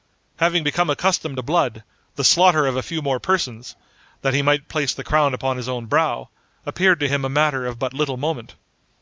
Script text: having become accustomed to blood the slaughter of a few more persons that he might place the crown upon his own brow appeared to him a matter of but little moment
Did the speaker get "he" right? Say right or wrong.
right